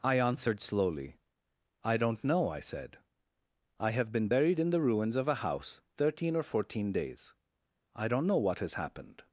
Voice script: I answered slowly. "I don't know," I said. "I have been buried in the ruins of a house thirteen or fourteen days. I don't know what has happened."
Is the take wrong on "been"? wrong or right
right